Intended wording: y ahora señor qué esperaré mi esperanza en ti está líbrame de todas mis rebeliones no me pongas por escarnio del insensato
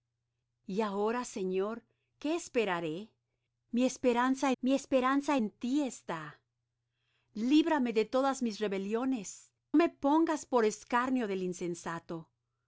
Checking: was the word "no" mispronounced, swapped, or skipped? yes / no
yes